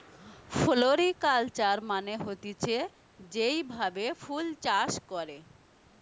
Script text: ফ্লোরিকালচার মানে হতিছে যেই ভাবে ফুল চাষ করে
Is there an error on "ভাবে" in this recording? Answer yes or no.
no